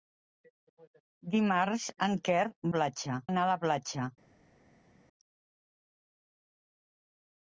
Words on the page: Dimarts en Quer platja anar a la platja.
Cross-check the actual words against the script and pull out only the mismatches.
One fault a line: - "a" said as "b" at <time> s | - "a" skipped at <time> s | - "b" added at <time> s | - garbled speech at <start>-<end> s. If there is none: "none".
none